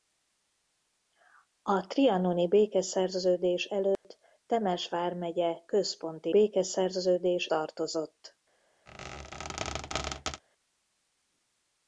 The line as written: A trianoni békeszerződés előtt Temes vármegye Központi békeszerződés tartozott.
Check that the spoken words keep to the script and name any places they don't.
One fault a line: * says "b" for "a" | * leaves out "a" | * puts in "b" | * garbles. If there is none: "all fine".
all fine